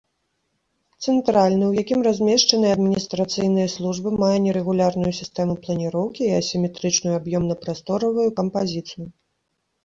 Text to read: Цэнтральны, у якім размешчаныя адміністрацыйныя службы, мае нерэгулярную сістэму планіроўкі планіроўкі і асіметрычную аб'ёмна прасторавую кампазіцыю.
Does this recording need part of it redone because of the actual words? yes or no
yes